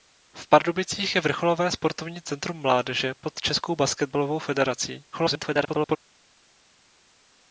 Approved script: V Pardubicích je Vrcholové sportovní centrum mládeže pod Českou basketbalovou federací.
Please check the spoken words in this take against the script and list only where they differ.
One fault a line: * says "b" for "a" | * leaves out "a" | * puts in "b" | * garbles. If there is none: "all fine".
* garbles